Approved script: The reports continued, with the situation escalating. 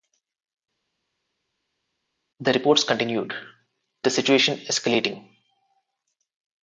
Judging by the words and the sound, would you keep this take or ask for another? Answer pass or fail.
fail